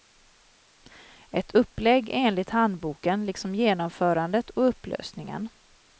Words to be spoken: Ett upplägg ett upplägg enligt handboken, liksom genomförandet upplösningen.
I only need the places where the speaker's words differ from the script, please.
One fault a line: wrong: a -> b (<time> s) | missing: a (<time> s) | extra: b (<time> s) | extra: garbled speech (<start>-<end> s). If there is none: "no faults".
missing: ett upplägg (2.1 s)
extra: och (4.5 s)